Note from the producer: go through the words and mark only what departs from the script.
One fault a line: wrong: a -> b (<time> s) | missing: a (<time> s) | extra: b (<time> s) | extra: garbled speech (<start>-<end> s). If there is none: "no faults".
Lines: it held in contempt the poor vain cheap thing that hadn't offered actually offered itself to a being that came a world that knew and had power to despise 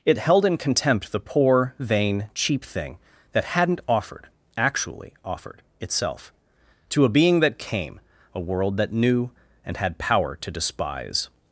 no faults